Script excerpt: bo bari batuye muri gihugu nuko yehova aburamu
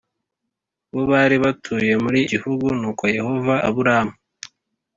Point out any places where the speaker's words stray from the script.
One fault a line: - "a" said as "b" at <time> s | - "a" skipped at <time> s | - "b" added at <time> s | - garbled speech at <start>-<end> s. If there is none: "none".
none